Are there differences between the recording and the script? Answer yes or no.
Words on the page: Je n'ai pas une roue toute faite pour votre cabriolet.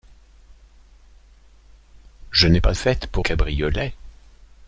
yes